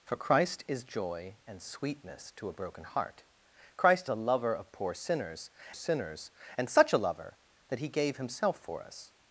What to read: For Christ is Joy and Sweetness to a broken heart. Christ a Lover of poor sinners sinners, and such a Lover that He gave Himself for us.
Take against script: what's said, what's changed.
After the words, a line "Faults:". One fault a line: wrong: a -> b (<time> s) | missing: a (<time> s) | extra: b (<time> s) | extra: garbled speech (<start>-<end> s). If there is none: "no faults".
For Christ is Joy and Sweetness to a broken heart. Christ a Lover of poor sinners sinners, and such a Lover that He gave Himself for us.
Faults:
no faults